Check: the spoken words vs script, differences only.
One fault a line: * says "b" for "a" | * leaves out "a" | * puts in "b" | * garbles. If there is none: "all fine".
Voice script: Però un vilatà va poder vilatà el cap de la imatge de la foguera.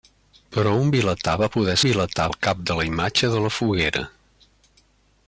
all fine